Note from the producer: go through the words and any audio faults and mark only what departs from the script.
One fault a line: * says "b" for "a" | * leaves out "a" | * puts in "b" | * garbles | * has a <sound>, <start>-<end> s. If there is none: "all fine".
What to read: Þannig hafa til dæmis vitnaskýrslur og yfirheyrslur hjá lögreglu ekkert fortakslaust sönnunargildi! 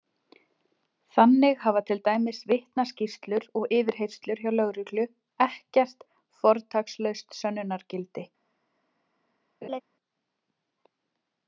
* has a laugh, 9.6-9.8 s